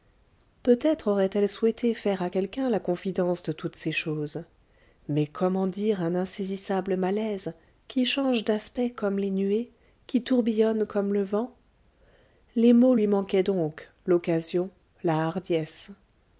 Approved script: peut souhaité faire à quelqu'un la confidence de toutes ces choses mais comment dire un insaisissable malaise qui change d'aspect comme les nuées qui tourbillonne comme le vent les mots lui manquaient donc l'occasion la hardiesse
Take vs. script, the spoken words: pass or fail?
fail